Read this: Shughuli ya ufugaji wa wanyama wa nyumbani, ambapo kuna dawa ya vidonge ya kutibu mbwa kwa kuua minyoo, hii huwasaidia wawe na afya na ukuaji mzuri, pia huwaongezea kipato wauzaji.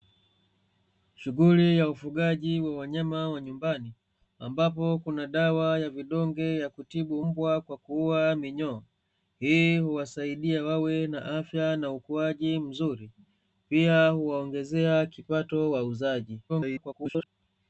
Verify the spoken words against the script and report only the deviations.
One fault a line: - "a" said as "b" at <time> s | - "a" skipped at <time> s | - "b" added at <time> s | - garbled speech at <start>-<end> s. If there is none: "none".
- garbled speech at 16.5-17.3 s